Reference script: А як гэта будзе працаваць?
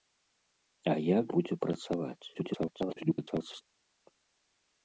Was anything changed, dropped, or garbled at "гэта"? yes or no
yes